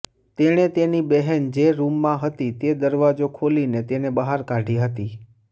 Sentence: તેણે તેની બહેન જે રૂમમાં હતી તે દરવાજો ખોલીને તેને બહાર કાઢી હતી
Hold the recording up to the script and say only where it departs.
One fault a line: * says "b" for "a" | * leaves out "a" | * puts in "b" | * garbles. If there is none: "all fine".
all fine